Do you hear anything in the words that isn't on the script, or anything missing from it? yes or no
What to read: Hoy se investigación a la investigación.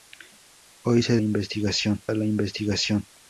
no